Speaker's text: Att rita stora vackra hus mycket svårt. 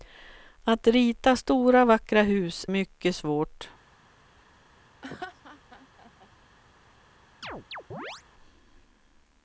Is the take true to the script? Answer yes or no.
yes